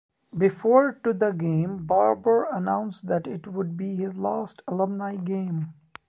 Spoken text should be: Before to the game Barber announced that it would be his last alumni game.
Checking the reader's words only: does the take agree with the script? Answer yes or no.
yes